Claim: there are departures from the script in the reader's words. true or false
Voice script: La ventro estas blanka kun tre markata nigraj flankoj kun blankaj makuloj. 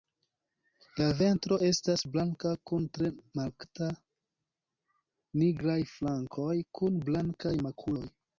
false